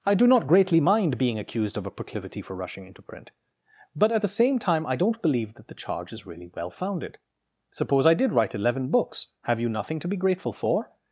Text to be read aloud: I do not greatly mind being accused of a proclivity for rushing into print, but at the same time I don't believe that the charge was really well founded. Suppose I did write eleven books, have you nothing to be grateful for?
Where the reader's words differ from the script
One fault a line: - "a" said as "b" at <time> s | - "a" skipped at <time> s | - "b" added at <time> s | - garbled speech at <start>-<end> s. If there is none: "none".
- "was" said as "is" at 6.1 s